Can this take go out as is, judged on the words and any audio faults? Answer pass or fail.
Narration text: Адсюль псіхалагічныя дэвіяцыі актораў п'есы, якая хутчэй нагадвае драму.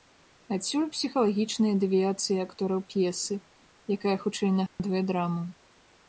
fail